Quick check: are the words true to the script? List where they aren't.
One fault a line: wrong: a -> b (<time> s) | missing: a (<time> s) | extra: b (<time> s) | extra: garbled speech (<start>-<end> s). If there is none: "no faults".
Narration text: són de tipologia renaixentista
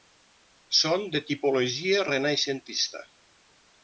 no faults